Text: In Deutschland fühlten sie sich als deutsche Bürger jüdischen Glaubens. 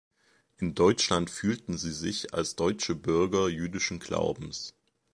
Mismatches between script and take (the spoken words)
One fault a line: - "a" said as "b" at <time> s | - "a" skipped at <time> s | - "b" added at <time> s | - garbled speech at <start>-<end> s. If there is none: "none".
none